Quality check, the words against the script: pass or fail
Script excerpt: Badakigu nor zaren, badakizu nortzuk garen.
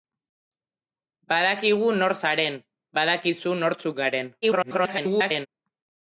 fail